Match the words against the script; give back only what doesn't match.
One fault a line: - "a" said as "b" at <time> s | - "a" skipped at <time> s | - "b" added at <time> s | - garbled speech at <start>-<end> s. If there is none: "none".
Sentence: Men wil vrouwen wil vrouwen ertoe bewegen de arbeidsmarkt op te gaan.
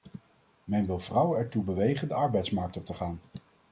- "wil vrouwen" skipped at 1.4 s